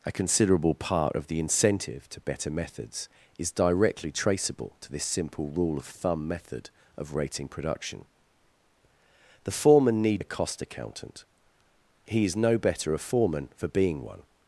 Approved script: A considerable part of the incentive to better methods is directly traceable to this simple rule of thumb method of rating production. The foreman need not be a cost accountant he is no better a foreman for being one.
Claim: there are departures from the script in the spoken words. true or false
true